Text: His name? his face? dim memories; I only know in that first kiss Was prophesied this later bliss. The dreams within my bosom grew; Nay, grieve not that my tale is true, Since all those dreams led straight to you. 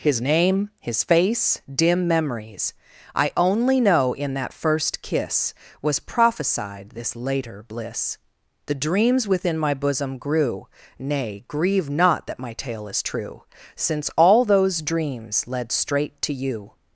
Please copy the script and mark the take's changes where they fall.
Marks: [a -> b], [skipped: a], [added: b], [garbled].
His name? his face? dim memories; I only know in that first kiss Was prophesied this later bliss. The dreams within my bosom grew; Nay, grieve not that my tale is true, Since all those dreams led straight to you.